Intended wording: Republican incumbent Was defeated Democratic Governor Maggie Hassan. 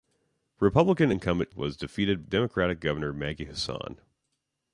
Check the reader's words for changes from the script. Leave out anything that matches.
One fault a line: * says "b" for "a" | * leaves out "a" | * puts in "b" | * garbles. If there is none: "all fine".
all fine